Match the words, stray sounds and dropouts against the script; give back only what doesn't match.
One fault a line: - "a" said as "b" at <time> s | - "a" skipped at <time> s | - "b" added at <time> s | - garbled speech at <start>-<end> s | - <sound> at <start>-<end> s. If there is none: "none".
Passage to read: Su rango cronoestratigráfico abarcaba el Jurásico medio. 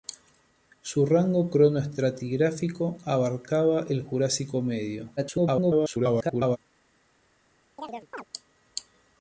- garbled speech at 5.2-6.6 s
- chirp at 7.8-8.2 s